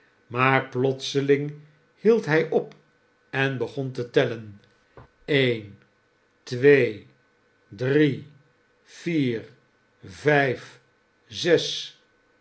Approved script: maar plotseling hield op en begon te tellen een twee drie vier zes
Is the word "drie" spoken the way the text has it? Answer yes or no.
yes